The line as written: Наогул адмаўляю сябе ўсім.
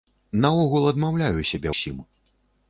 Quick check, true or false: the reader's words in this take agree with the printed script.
true